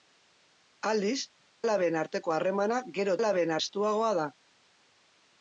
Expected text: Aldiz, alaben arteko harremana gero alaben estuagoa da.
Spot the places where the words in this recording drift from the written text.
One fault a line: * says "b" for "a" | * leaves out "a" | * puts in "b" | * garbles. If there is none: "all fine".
all fine